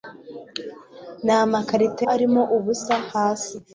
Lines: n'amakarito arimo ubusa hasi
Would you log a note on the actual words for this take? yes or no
no